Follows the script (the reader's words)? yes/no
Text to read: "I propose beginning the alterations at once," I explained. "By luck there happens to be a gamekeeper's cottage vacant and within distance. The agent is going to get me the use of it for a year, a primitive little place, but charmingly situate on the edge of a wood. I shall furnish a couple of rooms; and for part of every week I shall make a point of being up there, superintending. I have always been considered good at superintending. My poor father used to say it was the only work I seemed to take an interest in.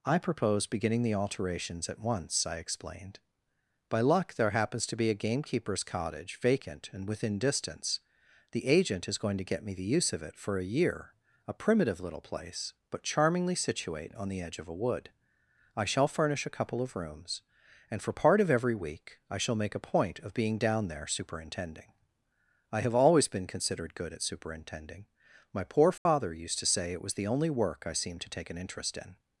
no